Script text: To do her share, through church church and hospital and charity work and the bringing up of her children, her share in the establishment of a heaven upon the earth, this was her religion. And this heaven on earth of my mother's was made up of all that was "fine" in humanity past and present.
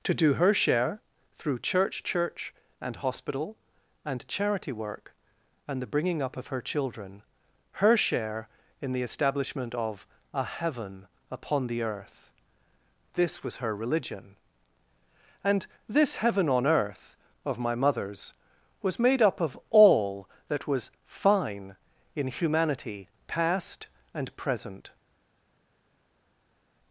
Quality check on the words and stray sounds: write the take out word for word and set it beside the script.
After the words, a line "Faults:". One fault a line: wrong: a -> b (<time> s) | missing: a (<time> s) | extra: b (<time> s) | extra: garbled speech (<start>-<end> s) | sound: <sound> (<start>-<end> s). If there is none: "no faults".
To do her share, through church church and hospital and charity work and the bringing up of her children, her share in the establishment of a heaven upon the earth, this was her religion. And this heaven on earth of my mother's was made up of all that was "fine" in humanity past and present.
Faults:
no faults